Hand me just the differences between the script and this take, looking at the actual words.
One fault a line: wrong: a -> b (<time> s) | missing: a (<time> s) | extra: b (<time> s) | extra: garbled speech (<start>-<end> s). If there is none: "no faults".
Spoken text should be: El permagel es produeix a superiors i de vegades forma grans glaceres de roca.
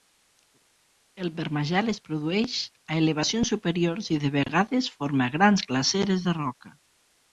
extra: elevacions (3.0 s)